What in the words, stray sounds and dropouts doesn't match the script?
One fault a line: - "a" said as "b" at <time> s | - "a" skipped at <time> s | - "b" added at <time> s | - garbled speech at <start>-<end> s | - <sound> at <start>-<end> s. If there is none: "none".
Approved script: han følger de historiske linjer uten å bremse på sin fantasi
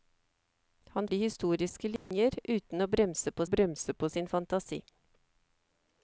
- "følger" skipped at 1.1 s
- dropout at 2.0-2.1 s
- "bremse på" added at 3.5 s